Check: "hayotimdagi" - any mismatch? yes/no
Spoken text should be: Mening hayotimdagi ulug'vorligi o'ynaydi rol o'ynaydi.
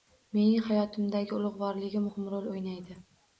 no